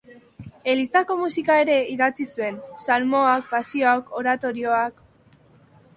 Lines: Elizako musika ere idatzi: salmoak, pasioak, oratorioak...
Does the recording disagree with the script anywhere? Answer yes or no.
yes